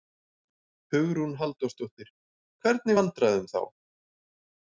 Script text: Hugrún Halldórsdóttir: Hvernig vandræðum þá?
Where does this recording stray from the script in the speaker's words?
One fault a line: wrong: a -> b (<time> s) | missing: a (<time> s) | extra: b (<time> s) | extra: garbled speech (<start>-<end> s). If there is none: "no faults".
no faults